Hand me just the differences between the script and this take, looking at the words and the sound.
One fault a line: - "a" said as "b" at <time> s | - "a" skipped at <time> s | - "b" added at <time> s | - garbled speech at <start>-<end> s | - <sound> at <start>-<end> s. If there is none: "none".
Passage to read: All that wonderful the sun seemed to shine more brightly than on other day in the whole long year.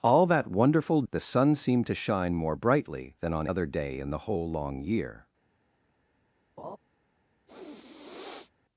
- laugh at 6.6-6.8 s
- sniff at 7.5-8.5 s